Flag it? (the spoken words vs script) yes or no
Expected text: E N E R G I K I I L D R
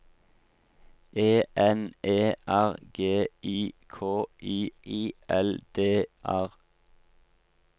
no